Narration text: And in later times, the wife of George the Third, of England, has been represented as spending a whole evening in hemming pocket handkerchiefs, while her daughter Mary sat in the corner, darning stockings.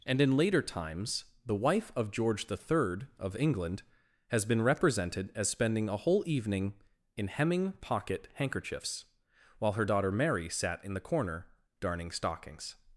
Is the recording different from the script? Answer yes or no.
no